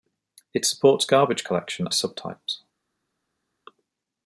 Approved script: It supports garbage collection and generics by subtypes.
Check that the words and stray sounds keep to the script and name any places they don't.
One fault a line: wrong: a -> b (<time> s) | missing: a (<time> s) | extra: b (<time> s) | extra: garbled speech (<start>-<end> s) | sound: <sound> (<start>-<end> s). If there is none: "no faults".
missing: and generics by (1.9 s)